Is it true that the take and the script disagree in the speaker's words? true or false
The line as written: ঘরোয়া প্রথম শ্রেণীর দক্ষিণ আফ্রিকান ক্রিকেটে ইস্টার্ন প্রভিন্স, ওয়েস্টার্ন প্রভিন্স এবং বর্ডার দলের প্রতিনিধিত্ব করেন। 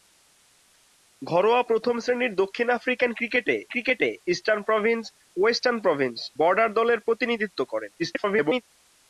true